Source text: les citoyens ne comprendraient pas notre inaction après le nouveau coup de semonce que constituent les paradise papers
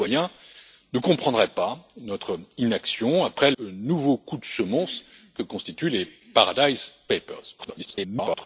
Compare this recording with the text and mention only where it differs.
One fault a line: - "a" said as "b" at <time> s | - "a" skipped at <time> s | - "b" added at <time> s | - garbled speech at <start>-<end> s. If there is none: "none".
- "le" skipped at 3.5 s
- garbled speech at 7.6-8.5 s